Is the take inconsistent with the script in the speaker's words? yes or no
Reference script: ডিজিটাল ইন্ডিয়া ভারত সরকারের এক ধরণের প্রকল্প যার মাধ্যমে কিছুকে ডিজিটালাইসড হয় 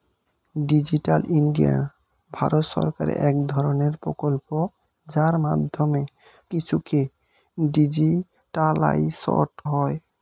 no